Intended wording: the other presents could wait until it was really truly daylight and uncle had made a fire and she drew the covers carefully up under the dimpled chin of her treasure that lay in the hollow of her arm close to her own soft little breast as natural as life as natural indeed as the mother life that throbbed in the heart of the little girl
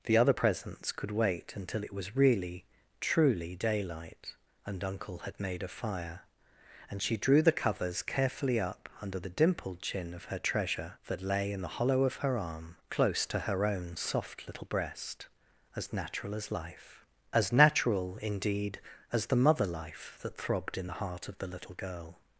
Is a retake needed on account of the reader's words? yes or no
no